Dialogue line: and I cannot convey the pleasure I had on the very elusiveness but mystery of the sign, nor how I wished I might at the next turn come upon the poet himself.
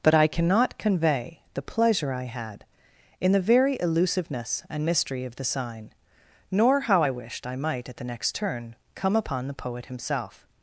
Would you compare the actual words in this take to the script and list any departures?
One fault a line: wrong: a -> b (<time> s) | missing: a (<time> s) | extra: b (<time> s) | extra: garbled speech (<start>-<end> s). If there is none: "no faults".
wrong: and -> but (0.0 s)
wrong: on -> in (3.2 s)
wrong: but -> and (4.7 s)